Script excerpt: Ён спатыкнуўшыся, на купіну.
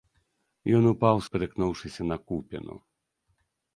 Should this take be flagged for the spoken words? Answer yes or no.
yes